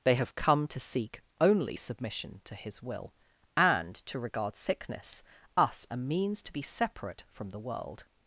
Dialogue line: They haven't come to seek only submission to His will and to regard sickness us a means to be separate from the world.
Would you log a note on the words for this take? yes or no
yes